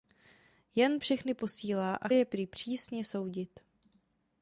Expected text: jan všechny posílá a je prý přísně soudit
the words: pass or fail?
pass